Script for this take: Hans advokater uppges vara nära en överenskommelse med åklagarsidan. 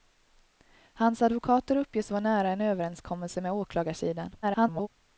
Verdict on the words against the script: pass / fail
fail